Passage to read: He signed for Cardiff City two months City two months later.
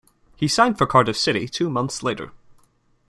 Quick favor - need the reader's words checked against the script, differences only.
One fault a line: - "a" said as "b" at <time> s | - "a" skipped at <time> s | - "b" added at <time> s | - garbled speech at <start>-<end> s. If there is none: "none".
- "City two months" skipped at 2.0 s